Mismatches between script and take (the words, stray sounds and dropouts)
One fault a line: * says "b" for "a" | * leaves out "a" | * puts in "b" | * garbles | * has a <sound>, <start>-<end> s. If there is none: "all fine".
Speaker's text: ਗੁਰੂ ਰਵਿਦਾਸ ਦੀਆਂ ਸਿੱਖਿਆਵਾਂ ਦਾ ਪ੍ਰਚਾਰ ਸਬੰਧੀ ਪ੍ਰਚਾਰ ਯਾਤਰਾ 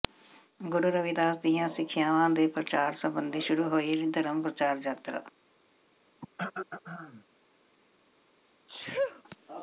* says "ਦੇ" for "ਦਾ"
* puts in "ਸ਼ੁਰੂ ਹੋਈ ਧਰਮ"
* has a throat clearing, 6.2-7.2 s
* has a sneeze, 8.7-9.2 s